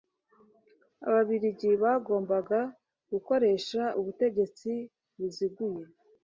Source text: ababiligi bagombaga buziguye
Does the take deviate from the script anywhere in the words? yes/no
yes